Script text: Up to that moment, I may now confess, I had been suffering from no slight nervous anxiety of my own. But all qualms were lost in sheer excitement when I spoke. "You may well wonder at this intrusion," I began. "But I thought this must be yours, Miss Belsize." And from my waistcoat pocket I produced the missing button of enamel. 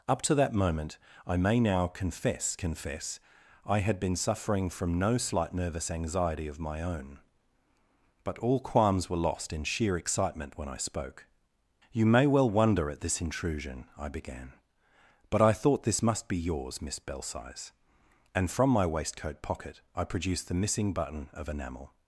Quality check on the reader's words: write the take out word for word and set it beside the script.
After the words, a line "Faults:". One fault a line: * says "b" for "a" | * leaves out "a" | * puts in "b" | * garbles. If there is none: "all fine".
Up to that moment, I may now confess confess, I had been suffering from no slight nervous anxiety of my own. But all qualms were lost in sheer excitement when I spoke. "You may well wonder at this intrusion," I began. "But I thought this must be yours, Miss Belsize." And from my waistcoat pocket I produced the missing button of enamel.
Faults:
* puts in "confess"